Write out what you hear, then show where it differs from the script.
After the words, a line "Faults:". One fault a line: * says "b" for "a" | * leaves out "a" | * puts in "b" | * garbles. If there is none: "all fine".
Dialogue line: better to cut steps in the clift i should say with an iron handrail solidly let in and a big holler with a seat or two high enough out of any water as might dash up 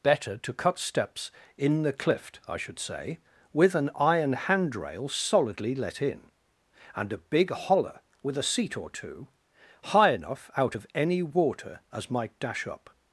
better to cut steps in the clift i should say with an iron handrail solidly let in and a big holler with a seat or two high enough out of any water as might dash up
Faults:
all fine